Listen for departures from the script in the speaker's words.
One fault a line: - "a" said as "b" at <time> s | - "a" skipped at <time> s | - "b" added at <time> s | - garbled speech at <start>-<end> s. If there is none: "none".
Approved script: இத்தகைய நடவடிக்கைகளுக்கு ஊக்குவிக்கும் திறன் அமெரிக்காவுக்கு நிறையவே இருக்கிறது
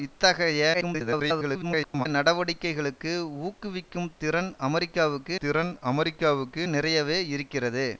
- garbled speech at 0.7-2.1 s
- "திறன் அமெரிக்காவுக்கு" added at 5.4 s